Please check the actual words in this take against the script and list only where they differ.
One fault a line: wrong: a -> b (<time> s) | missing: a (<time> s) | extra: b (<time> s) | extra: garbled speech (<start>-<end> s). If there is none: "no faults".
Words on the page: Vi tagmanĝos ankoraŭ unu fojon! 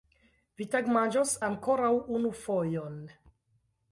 no faults